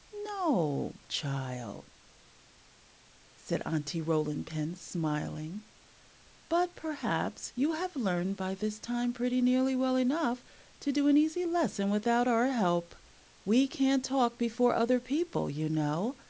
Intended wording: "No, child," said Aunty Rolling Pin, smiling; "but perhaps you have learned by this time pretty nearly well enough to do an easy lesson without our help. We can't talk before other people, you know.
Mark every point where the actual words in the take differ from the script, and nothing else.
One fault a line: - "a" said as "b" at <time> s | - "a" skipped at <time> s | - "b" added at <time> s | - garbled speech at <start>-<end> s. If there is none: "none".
none